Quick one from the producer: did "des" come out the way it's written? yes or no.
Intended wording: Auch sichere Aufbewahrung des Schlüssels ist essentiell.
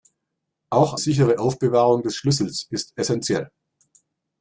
yes